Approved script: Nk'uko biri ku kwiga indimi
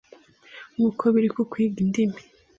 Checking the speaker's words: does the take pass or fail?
pass